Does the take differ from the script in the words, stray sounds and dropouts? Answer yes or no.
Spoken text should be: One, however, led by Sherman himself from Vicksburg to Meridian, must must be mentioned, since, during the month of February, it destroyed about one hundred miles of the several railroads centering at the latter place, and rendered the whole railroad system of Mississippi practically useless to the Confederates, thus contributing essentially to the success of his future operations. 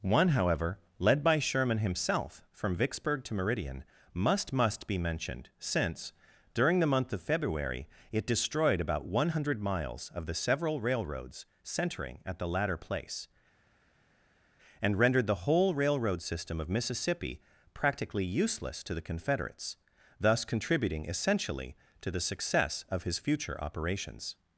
no